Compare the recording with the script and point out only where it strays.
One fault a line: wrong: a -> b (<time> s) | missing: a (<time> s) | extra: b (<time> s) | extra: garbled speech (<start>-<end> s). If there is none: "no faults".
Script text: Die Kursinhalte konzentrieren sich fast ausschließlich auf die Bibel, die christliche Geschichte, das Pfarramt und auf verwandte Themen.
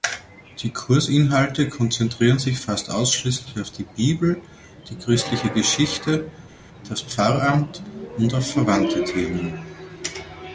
no faults